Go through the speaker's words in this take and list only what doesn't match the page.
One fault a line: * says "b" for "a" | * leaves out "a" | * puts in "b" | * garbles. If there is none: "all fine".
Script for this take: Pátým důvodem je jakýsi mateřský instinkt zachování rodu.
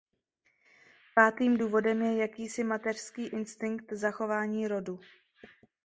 all fine